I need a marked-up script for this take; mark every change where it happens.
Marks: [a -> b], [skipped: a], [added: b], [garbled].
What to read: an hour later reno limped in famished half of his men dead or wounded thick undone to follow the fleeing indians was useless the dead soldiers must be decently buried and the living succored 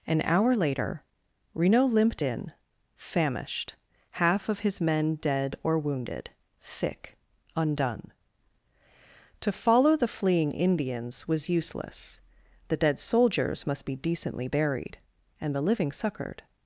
an hour later reno limped in famished half of his men dead or wounded thick undone to follow the fleeing indians was useless the dead soldiers must be decently buried and the living succored